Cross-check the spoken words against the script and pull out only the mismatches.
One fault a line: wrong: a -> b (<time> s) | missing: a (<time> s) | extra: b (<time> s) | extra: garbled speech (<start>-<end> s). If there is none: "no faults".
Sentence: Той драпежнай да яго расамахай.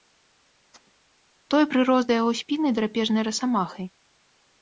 wrong: драпежнай -> прырос (1.7 s)
extra: спіны драпежнай (2.4 s)